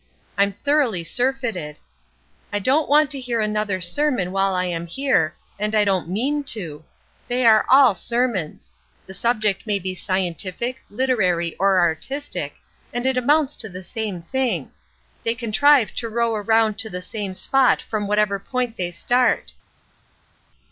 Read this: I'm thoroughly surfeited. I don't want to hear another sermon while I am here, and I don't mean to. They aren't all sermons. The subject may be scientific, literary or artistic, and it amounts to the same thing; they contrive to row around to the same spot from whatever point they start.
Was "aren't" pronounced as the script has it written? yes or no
no